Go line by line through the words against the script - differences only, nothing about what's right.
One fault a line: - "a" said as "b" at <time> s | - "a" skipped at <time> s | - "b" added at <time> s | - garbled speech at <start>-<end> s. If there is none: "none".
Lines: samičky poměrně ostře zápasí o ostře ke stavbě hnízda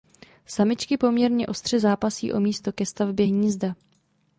- "ostře" said as "místo" at 2.4 s